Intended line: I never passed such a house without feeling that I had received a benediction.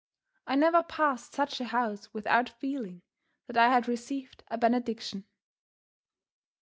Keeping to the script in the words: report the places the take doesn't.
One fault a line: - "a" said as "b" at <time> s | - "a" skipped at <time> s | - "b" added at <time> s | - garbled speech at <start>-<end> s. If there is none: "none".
none